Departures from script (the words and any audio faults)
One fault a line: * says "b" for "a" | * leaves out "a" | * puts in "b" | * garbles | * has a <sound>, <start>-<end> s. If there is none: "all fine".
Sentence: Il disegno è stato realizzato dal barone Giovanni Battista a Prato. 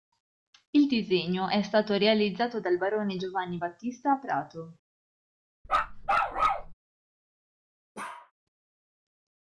* has a bark, 5.6-6.7 s
* has a bark, 7.9-8.3 s